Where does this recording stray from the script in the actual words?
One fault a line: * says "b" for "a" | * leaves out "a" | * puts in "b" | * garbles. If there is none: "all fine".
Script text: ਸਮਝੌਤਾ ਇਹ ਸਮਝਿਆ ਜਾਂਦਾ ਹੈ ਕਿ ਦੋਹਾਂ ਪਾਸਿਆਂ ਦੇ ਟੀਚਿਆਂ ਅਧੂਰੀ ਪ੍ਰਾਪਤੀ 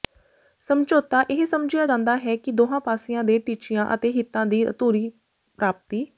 * puts in "ਅਤੇ ਹਿੱਤਾਂ ਦੀ"